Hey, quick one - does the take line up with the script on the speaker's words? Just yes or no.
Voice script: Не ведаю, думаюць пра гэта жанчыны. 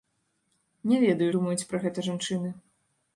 yes